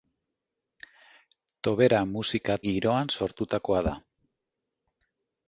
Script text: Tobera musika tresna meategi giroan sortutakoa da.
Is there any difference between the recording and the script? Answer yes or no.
yes